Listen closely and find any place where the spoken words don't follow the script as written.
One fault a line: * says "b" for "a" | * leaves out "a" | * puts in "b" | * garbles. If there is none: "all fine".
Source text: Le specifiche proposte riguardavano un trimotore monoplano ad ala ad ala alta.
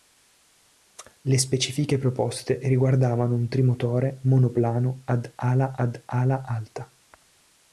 all fine